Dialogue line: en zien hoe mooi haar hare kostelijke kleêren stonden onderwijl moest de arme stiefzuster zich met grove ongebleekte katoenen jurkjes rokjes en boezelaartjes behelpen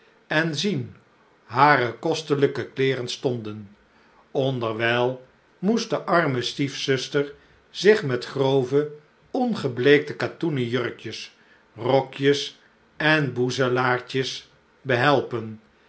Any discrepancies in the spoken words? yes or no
yes